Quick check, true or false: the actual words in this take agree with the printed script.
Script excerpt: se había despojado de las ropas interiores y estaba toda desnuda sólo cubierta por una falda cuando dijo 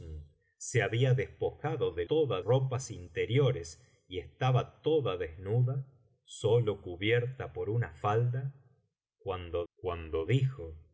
false